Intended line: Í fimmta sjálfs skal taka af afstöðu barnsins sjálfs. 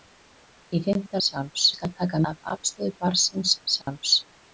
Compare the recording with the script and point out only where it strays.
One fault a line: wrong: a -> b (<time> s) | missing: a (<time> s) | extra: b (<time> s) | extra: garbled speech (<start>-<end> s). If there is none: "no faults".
no faults